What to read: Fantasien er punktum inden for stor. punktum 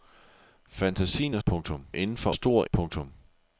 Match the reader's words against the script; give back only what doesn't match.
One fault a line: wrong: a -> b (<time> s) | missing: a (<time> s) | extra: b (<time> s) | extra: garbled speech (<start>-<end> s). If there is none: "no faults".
no faults